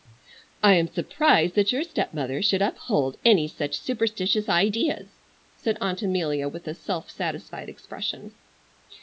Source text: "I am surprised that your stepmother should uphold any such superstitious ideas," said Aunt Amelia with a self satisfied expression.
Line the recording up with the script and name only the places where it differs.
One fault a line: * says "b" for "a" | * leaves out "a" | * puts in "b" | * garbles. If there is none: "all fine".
all fine